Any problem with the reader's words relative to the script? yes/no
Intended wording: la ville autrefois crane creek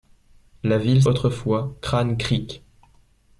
no